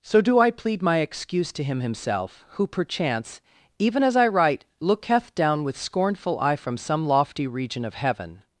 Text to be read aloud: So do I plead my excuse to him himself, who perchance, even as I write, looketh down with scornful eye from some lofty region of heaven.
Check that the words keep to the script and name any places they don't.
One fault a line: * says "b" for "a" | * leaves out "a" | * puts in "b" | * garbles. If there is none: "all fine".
all fine